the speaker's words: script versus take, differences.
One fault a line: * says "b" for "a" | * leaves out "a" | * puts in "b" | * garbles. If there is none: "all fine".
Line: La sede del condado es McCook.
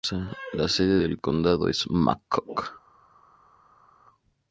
all fine